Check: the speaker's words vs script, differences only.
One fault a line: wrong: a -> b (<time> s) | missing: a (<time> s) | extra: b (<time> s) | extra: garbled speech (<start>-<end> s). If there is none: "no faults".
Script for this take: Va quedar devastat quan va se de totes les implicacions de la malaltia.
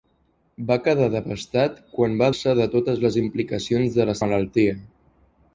no faults